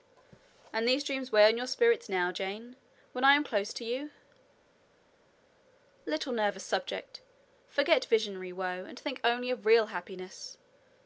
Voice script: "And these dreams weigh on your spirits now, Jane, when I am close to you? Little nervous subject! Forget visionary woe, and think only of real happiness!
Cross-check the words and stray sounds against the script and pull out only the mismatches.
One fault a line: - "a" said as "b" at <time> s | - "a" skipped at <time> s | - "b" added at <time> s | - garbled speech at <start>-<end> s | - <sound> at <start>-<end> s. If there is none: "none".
none